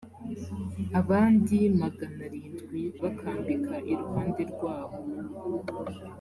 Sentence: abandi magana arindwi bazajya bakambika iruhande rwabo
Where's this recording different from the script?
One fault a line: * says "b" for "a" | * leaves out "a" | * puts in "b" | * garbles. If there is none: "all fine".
* leaves out "bazajya"